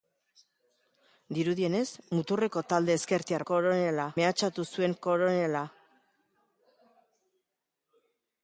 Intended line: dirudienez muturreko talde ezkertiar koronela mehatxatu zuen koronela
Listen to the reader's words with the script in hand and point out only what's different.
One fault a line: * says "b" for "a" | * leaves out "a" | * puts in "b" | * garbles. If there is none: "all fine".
all fine